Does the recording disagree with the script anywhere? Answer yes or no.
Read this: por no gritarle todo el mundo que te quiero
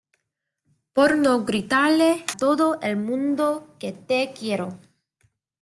no